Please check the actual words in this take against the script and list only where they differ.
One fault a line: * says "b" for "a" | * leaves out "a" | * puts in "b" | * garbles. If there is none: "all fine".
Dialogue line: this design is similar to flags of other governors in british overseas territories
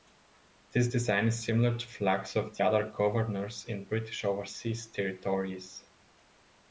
all fine